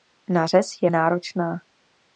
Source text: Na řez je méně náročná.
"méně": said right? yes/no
no